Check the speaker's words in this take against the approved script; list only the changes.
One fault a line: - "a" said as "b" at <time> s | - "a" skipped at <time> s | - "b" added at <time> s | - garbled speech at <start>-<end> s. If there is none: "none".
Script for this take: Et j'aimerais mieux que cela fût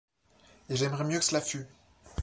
none